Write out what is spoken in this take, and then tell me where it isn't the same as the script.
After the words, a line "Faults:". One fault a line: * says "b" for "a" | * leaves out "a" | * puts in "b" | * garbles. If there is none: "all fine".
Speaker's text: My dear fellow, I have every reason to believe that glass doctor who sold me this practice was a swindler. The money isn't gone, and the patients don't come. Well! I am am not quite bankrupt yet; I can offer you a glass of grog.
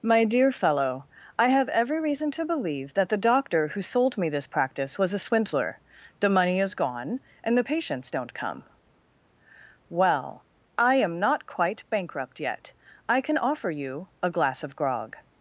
My dear fellow, I have every reason to believe that the doctor who sold me this practice was a swindler. The money is gone, and the patients don't come. Well! I am not quite bankrupt yet; I can offer you a glass of grog.
Faults:
* says "the" for "glass"
* says "is" for "isn't"
* leaves out "am"